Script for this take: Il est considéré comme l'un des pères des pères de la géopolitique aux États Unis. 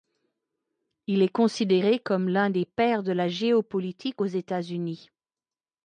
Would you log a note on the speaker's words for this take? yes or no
yes